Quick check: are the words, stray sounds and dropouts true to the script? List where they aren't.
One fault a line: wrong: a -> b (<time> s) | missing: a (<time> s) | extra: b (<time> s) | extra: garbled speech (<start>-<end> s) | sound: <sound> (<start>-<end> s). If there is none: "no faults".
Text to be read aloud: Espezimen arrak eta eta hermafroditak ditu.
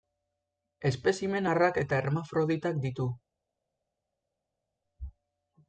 missing: eta (2.0 s)